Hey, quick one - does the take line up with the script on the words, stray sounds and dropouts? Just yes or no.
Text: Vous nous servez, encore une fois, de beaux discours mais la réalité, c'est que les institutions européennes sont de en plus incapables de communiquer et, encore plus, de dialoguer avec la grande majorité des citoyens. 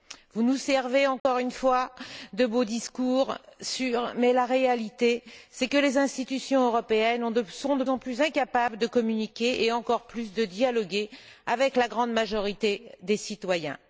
no